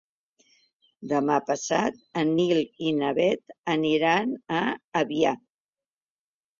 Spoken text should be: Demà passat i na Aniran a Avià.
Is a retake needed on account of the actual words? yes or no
yes